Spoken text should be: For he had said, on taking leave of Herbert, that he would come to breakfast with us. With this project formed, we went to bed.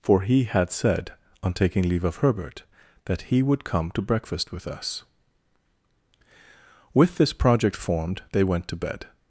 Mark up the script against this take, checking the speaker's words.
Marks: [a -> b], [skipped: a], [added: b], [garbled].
For he had said, on taking leave of Herbert, that he would come to breakfast with us. With this project formed, [we -> they] went to bed.